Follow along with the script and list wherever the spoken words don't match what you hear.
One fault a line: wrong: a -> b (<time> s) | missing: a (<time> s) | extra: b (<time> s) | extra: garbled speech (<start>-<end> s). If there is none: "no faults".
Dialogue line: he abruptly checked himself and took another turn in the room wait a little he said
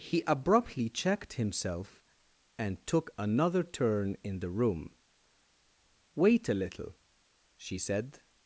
wrong: he -> she (7.6 s)